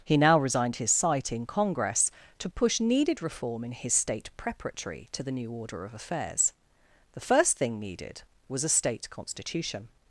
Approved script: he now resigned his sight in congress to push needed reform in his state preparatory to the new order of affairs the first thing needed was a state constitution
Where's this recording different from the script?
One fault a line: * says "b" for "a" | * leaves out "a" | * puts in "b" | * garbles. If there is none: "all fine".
all fine